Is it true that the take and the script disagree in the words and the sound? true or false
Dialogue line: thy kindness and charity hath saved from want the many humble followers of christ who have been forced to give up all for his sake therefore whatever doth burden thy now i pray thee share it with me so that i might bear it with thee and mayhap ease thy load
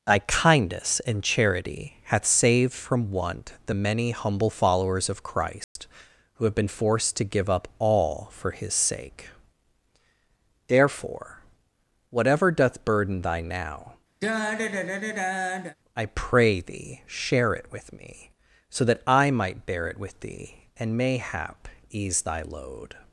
true